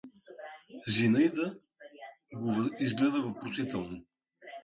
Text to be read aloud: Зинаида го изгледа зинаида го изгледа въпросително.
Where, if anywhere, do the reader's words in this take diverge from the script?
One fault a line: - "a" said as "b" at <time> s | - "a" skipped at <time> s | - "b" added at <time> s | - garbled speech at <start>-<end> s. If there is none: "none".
- "зинаида го изгледа" skipped at 3.2 s